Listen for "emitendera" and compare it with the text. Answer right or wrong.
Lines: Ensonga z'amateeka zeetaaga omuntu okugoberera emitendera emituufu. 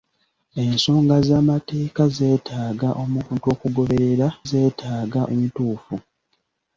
wrong